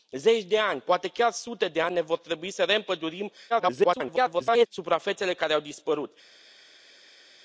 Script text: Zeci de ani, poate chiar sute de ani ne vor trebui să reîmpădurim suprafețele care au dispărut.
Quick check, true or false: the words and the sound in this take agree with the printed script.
false